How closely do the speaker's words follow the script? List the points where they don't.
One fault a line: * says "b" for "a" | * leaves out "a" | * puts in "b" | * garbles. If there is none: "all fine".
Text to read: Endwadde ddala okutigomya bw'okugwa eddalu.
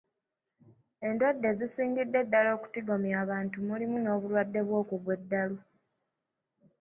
* puts in "ezisingidde"
* puts in "abantu mulimu n'obulwadde"